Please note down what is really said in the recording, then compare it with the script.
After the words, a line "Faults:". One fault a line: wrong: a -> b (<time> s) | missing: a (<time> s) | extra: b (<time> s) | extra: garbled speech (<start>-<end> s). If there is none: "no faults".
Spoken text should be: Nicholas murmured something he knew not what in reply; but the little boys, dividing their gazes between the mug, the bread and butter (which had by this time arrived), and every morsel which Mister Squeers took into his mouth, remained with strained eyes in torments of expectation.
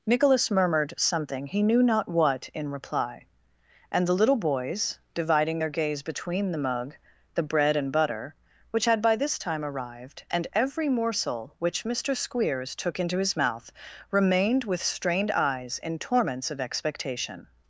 Nicholas murmured something he knew not what in reply; and the little boys, dividing their gaze between the mug, the bread and butter (which had by this time arrived), and every morsel which Mister Squeers took into his mouth, remained with strained eyes in torments of expectation.
Faults:
wrong: but -> and (3.9 s)
wrong: gazes -> gaze (5.7 s)